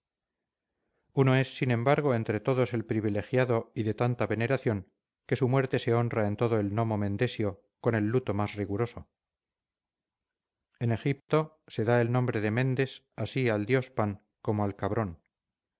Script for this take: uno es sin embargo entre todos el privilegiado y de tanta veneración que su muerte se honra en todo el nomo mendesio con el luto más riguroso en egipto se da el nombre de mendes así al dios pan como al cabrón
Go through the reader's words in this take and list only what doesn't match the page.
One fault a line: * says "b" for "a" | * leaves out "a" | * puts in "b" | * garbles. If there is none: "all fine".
all fine